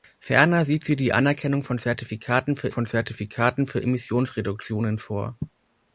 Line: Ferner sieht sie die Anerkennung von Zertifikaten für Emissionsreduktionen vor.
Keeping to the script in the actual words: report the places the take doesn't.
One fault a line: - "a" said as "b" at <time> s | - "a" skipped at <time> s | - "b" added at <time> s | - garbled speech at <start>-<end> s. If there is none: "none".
- "von Zertifikaten für" added at 2.7 s